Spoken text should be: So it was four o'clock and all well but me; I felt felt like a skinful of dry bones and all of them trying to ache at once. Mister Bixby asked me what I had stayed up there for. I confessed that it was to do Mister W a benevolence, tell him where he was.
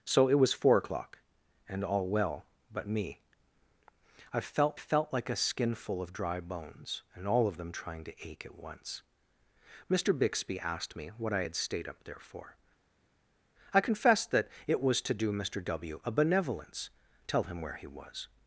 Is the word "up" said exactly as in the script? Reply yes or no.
yes